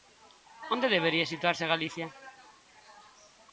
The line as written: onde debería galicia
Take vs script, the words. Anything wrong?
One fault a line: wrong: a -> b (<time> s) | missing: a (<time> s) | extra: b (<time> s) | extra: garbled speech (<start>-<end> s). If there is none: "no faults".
extra: situarse (1.3 s)